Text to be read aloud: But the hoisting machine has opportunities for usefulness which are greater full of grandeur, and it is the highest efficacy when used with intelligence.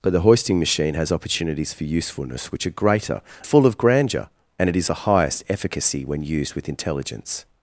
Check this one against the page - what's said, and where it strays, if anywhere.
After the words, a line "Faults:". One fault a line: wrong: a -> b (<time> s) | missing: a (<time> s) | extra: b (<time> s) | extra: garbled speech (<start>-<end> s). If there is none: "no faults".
But the hoisting machine has opportunities for usefulness which are greater full of grandeur, and it is the highest efficacy when used with intelligence.
Faults:
no faults